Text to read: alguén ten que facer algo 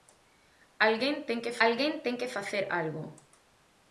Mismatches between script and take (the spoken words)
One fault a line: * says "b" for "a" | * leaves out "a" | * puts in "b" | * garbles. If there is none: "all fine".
* puts in "alguén ten que"